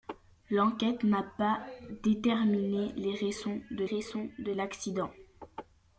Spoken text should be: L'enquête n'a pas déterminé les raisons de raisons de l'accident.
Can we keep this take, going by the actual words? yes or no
yes